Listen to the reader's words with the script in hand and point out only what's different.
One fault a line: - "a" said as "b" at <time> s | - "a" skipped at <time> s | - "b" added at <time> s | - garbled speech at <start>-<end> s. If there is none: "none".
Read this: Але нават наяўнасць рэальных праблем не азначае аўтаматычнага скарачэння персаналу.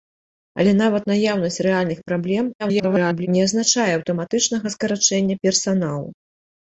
- garbled speech at 2.6-3.3 s